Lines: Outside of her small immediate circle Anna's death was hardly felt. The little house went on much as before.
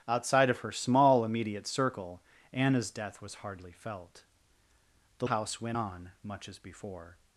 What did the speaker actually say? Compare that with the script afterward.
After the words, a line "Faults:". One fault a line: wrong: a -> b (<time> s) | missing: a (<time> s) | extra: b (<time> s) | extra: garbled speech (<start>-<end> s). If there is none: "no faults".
Outside of her small immediate circle Anna's death was hardly felt. The house went on much as before.
Faults:
missing: little (5.3 s)